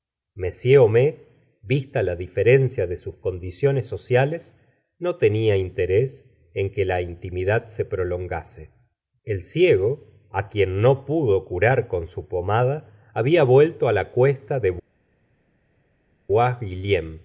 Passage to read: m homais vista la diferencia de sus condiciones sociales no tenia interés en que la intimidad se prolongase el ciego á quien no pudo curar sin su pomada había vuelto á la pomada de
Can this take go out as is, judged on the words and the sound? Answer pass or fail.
fail